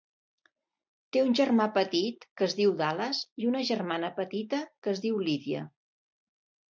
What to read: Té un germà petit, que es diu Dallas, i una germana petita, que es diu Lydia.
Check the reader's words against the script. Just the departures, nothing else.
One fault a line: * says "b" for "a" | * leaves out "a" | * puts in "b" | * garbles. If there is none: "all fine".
all fine